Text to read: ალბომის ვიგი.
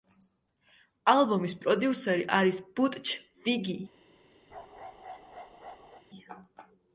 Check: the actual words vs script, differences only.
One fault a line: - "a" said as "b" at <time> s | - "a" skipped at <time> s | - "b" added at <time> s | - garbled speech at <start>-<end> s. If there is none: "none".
- "პროდიუსერი არის ბუტჩ" added at 1.6 s